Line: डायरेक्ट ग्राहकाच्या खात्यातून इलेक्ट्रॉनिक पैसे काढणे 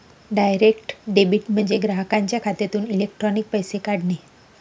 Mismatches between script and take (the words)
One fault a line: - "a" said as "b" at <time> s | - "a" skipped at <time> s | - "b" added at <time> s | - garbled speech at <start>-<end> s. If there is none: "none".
- "डेबिट म्हणजे" added at 1.1 s